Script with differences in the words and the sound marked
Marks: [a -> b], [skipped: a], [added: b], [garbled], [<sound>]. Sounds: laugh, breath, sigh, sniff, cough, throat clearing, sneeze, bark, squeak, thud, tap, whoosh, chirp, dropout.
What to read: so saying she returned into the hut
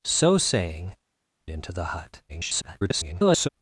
so saying [skipped: she returned] into the hut [garbled]